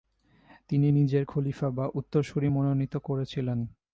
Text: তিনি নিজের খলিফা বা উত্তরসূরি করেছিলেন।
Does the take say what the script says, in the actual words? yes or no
no